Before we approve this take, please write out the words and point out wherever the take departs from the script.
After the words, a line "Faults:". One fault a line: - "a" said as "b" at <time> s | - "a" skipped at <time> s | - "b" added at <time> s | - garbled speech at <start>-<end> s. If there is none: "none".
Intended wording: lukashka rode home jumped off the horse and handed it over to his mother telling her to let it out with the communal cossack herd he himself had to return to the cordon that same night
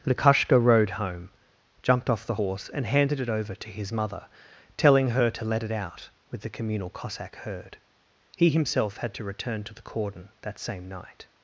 lukashka rode home jumped off the horse and handed it over to his mother telling her to let it out with the communal cossack herd he himself had to return to the cordon that same night
Faults:
none